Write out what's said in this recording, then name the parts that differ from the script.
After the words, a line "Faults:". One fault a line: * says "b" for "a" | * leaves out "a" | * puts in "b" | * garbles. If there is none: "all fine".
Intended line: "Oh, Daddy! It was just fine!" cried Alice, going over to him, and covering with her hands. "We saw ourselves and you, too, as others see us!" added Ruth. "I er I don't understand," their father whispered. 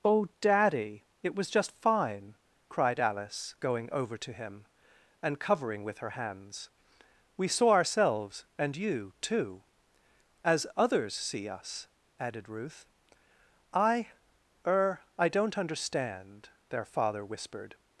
"Oh, Daddy! It was just fine!" cried Alice, going over to him, and covering with her hands. "We saw ourselves and you, too, as others see us!" added Ruth. "I er I don't understand," their father whispered.
Faults:
all fine